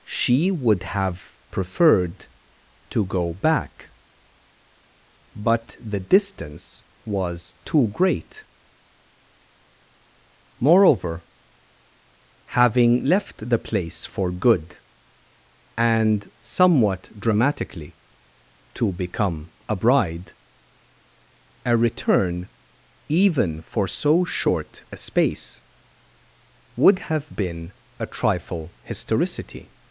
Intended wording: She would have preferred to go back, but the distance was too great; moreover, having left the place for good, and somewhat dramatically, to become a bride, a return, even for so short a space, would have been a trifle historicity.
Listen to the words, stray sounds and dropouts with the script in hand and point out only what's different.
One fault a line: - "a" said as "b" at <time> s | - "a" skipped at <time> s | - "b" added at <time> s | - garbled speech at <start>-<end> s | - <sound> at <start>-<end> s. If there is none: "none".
none